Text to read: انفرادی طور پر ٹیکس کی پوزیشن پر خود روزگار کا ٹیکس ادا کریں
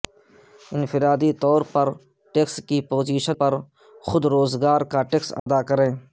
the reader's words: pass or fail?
pass